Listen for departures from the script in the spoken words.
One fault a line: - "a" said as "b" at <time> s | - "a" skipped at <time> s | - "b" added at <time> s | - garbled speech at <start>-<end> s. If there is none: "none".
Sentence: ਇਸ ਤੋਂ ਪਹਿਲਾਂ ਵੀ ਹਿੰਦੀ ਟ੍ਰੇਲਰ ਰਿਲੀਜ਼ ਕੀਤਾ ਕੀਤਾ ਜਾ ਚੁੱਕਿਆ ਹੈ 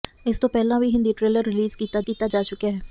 none